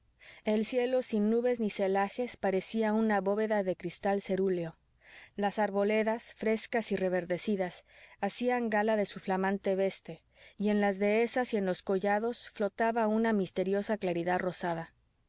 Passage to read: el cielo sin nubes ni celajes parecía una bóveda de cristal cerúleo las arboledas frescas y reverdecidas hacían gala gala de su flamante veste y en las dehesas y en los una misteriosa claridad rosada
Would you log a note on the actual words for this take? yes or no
yes